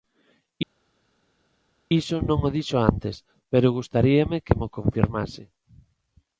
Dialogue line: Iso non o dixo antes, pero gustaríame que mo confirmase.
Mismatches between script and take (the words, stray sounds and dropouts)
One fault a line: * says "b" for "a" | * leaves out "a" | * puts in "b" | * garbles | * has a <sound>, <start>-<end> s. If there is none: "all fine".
all fine